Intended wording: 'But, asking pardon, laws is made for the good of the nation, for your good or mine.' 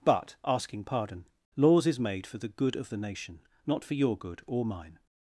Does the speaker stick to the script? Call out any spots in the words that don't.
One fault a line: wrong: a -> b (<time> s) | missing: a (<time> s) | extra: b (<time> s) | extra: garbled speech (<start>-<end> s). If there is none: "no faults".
extra: not (3.6 s)